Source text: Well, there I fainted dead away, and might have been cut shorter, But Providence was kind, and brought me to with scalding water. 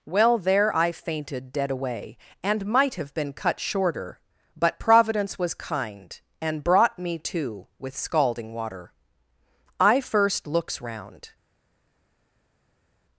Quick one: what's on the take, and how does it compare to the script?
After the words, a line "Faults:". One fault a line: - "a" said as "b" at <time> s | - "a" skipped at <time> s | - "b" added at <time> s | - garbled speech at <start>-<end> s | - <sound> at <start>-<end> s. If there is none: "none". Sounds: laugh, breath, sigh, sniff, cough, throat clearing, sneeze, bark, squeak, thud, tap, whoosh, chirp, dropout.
Well, there I fainted dead away, and might have been cut shorter, But Providence was kind, and brought me to with scalding water. I first looks round
Faults:
- "I first looks round" added at 9.8 s